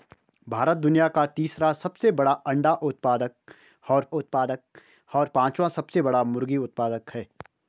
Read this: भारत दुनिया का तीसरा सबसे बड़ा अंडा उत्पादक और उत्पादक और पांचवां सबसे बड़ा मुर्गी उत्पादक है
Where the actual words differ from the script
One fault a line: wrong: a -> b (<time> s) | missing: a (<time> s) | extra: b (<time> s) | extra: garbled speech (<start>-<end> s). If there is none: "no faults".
no faults